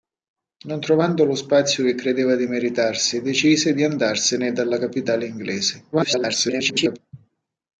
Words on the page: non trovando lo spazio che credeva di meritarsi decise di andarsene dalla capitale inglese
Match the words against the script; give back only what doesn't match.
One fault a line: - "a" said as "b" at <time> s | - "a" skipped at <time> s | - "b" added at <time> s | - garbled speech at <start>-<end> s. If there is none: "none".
- garbled speech at 5.9-7.0 s